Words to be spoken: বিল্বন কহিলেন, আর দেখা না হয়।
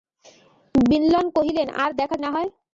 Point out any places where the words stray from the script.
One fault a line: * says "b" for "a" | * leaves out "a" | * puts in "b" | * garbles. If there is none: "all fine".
all fine